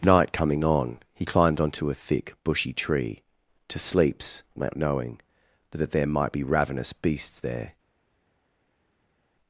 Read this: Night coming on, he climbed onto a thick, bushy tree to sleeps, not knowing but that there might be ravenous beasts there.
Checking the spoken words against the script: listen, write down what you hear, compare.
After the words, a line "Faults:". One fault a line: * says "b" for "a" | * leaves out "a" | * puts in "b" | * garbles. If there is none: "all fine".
Night coming on, he climbed onto a thick, bushy tree to sleeps, not knowing but that there might be ravenous beasts there.
Faults:
all fine